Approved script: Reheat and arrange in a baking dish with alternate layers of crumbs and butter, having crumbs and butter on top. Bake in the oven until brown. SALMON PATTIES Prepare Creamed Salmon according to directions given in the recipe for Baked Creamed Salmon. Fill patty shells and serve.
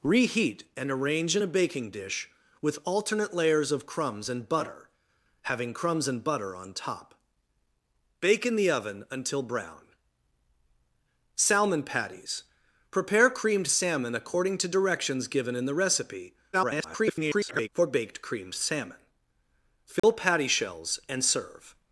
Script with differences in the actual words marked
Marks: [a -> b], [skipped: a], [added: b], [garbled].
Reheat and arrange in a baking dish with alternate layers of crumbs and butter, having crumbs and butter on top. Bake in the oven until brown. SALMON PATTIES Prepare Creamed Salmon according to directions given in the recipe [garbled] for Baked Creamed Salmon. Fill patty shells and serve.